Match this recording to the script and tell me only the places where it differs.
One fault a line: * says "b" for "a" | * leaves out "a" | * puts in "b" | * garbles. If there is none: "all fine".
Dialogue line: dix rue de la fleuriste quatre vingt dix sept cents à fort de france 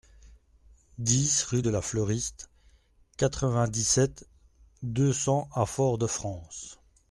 * puts in "deux"